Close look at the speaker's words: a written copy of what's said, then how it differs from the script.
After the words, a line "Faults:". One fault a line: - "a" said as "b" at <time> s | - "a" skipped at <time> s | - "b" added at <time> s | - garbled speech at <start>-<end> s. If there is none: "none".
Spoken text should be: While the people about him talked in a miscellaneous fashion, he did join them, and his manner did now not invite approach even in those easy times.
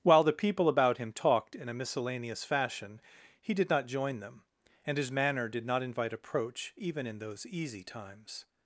While the people about him talked in a miscellaneous fashion, he did not join them, and his manner did not invite approach even in those easy times.
Faults:
- "not" added at 3.7 s
- "now" skipped at 5.7 s